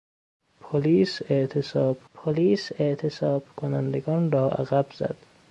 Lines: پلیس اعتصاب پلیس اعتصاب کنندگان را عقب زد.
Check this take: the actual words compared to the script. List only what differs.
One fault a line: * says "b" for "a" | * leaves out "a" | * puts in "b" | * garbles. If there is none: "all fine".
all fine